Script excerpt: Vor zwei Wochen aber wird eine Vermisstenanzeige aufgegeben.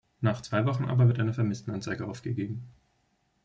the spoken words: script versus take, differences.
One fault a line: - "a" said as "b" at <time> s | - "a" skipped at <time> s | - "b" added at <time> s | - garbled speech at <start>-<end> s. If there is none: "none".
- "Vor" said as "Nach" at 0.2 s